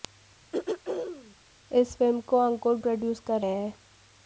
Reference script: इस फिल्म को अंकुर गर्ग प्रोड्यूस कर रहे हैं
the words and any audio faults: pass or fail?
fail